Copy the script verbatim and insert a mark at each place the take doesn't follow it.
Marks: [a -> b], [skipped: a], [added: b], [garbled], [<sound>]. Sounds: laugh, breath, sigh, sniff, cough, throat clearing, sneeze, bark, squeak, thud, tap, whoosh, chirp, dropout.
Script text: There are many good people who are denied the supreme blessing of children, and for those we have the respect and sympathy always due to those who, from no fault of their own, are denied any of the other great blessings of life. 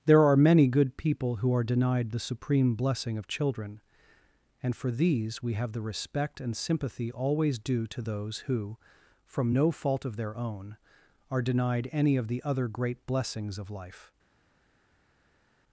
There are many good people who are denied the supreme blessing of children, and for [those -> these] we have the respect and sympathy always due to those who, from no fault of their own, are denied any of the other great blessings of life.